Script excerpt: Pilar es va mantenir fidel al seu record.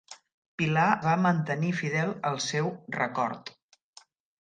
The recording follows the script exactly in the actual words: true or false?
false